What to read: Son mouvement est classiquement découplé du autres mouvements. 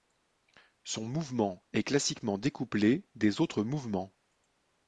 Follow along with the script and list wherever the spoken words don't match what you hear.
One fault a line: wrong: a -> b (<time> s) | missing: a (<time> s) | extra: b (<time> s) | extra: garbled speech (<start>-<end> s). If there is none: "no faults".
wrong: du -> des (3.2 s)